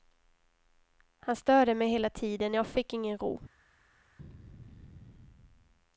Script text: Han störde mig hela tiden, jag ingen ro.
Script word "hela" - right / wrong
right